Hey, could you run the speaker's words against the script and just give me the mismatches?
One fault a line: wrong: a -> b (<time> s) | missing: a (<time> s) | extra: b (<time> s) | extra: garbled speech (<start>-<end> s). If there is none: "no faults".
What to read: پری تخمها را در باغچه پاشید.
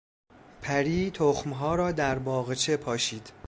no faults